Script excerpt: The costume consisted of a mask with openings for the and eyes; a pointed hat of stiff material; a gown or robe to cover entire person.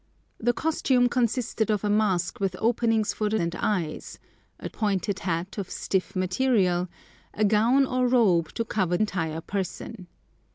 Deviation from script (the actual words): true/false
false